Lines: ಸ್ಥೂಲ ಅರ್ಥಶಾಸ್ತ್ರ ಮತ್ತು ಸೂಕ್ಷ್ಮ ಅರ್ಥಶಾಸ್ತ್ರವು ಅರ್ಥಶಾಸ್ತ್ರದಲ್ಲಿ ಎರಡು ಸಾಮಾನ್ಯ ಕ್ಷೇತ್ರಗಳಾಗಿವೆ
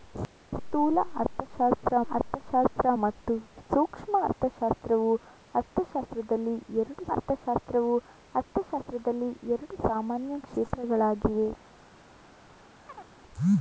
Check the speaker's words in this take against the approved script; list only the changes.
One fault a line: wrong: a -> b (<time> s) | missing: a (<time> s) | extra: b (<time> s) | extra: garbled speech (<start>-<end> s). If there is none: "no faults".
extra: ಅರ್ಥಶಾಸ್ತ್ರ (2.1 s)
extra: ಅರ್ಥಶಾಸ್ತ್ರವು ಅರ್ಥಶಾಸ್ತ್ರದಲ್ಲಿ ಎರಡು (7.1 s)